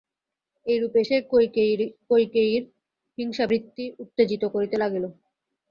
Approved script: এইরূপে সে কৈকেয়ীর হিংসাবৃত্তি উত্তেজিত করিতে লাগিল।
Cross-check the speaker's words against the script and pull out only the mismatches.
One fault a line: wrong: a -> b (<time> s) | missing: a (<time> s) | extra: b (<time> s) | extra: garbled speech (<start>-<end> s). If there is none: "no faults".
no faults